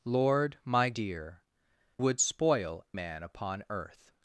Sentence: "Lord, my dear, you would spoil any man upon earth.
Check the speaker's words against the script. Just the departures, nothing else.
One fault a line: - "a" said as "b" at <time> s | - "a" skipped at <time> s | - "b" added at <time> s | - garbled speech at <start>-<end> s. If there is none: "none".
- "you" skipped at 1.4 s
- "any" skipped at 2.8 s